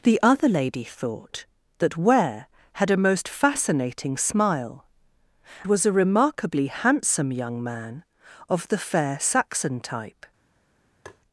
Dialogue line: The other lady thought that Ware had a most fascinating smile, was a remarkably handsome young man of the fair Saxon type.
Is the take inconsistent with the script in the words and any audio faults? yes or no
yes